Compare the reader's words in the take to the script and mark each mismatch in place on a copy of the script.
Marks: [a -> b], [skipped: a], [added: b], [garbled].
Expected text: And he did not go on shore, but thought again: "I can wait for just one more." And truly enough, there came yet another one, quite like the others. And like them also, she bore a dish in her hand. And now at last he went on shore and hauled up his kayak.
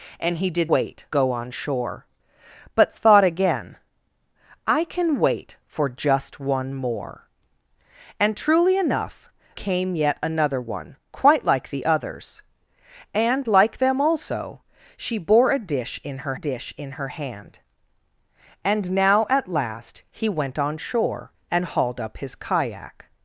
And he did [not -> wait] go on shore, but thought again: "I can wait for just one more." And truly enough, [skipped: there] came yet another one, quite like the others. And like them also, she bore a dish in her [added: dish in her] hand. And now at last he went on shore and hauled up his kayak.